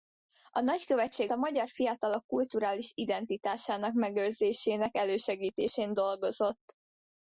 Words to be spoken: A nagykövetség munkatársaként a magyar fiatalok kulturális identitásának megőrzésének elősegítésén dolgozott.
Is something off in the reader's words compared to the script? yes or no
yes